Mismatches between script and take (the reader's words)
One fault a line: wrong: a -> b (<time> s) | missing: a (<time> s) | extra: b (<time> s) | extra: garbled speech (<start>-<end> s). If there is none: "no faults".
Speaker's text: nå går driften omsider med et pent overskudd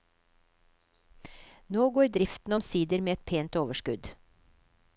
no faults